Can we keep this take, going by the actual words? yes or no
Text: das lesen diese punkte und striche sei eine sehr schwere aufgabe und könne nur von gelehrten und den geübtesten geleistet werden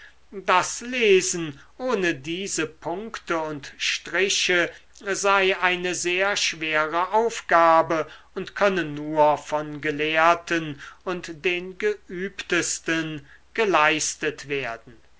no